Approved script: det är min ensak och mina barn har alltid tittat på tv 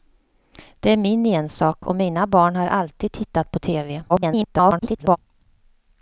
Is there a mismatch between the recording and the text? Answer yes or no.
yes